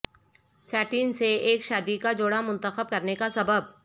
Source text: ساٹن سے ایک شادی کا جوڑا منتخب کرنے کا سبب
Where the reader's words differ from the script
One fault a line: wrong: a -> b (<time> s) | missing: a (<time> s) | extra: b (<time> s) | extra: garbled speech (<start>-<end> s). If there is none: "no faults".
no faults